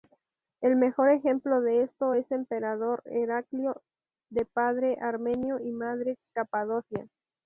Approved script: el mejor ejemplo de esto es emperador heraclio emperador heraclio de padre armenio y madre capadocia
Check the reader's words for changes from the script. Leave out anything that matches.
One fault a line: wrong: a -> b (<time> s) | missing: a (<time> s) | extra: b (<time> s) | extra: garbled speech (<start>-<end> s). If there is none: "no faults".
missing: emperador heraclio (3.8 s)